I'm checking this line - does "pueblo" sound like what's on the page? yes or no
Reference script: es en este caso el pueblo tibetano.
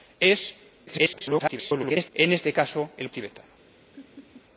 no